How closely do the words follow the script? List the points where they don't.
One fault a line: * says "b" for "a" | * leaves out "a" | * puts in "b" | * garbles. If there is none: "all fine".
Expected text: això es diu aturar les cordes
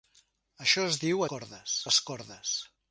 * says "cordes" for "aturar"